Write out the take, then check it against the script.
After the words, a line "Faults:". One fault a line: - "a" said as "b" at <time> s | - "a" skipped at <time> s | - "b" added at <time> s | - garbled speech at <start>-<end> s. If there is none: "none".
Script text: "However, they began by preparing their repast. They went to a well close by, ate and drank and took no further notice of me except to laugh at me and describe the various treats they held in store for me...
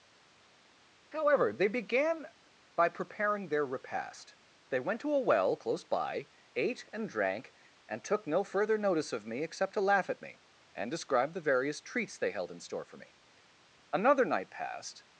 "However, they began by preparing their repast. They went to a well close by, ate and drank and took no further notice of me except to laugh at me and describe the various treats they held in store for me... Another night passed
Faults:
- "Another night passed" added at 13.9 s